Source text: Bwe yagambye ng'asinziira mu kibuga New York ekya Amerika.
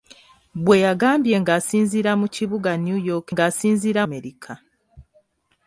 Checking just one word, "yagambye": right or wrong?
right